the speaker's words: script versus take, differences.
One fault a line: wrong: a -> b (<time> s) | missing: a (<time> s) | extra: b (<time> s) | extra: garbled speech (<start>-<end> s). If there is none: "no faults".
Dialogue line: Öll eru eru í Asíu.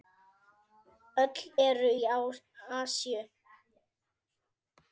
missing: eru (1.9 s)